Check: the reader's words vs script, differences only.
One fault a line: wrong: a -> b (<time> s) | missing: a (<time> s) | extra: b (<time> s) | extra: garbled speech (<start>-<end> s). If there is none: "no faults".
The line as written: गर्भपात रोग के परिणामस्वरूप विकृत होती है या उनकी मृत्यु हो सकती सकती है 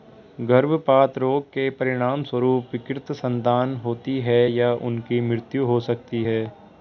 extra: संतान (3.1 s)
missing: सकती (6.2 s)